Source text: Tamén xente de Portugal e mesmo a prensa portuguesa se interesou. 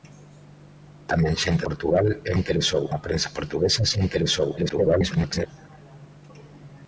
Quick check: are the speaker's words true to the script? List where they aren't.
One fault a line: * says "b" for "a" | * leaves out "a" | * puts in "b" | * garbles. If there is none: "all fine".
* leaves out "de"
* says "interesou" for "mesmo"
* garbles